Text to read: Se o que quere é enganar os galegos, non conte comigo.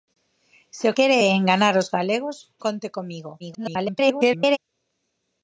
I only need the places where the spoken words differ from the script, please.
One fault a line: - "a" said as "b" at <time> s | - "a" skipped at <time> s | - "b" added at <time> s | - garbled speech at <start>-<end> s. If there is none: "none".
- "que" skipped at 0.9 s
- "non" skipped at 2.4 s
- garbled speech at 3.4-4.6 s